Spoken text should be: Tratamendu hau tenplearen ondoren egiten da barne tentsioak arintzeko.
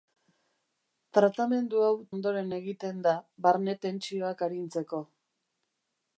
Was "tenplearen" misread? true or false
true